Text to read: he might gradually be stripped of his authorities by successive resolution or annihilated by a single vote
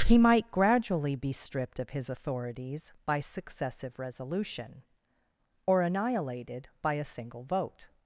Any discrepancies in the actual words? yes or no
no